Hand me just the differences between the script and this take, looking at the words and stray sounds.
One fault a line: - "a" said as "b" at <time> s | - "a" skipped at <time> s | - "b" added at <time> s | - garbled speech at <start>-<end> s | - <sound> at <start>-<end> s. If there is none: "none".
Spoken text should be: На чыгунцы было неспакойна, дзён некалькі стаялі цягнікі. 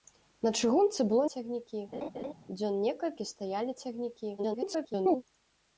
- "неспакойна" said as "цягнікі" at 1.3 s
- laugh at 1.9-2.3 s
- garbled speech at 4.4-5.2 s